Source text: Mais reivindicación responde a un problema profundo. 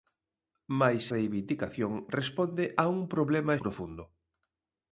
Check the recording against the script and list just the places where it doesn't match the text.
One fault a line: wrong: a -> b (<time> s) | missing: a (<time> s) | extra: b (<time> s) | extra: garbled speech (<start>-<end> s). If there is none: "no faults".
no faults